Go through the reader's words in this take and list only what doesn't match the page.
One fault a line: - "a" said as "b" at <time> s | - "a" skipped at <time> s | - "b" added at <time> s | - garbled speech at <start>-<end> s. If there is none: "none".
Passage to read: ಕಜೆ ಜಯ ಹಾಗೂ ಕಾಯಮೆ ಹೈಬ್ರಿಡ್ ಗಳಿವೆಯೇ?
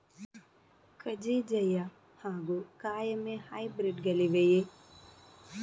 none